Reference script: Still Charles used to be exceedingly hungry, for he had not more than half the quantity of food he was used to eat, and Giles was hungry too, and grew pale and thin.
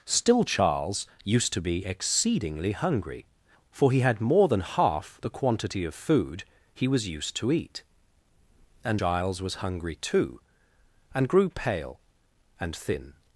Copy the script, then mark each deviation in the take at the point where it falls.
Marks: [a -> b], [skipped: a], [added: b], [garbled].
Still Charles used to be exceedingly hungry, for he had [skipped: not] more than half the quantity of food he was used to eat, and Giles was hungry too, and grew pale and thin.